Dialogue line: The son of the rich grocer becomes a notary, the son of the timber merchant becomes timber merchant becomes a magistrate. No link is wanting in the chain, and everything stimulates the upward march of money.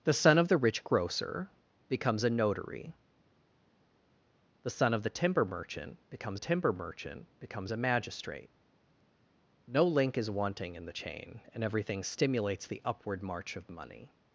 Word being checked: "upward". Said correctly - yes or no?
yes